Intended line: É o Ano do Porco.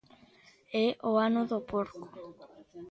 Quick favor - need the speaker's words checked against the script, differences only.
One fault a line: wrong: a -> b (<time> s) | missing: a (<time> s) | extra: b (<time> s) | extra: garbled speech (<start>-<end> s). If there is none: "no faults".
no faults